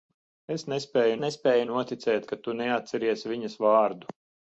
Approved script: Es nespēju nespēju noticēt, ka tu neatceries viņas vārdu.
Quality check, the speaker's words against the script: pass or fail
pass